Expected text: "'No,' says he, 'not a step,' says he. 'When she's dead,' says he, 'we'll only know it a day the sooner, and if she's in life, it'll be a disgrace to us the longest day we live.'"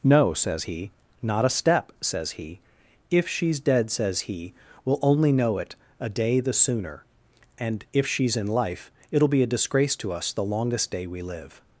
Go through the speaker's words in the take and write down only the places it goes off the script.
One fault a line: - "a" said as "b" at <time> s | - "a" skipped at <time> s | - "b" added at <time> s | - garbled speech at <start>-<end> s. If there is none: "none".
- "When" said as "If" at 3.1 s